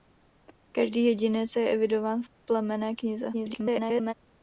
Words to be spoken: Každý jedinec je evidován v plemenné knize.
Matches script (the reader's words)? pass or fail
fail